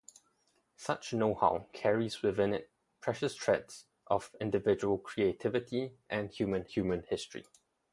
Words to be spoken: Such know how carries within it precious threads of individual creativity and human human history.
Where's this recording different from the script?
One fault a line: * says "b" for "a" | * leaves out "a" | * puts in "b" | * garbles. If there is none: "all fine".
all fine